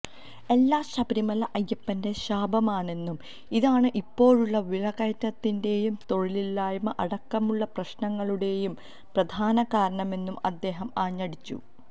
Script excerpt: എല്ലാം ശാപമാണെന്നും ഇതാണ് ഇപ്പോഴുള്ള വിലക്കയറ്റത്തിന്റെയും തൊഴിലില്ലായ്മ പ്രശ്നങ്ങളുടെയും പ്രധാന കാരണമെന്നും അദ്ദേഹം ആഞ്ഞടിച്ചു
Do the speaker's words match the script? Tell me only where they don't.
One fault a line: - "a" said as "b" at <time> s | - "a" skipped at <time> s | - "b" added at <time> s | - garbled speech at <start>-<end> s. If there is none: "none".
- "ശബരിമല അയ്യപ്പന്റെ" added at 0.8 s
- "അടക്കമുള്ള" added at 7.0 s